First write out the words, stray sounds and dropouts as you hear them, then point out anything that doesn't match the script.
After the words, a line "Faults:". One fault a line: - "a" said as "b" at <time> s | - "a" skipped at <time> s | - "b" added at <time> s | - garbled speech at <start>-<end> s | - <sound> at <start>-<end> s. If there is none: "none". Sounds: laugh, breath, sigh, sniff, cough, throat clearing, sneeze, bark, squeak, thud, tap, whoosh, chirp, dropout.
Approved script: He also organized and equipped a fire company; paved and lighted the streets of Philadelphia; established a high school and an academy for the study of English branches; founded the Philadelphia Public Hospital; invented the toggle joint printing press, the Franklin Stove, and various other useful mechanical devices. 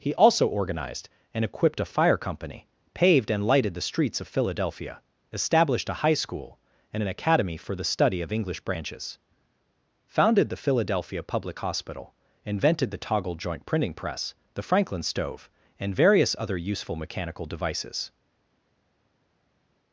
He also organized and equipped a fire company; paved and lighted the streets of Philadelphia; established a high school and an academy for the study of English branches; founded the Philadelphia Public Hospital; invented the toggle joint printing press, the Franklin Stove, and various other useful mechanical devices.
Faults:
none